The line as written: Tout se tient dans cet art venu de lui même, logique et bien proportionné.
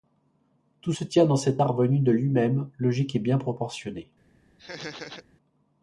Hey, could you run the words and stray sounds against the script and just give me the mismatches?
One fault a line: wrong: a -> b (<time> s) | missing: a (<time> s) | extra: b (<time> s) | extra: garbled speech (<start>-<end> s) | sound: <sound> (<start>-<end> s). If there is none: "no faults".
sound: laugh (4.6-5.2 s)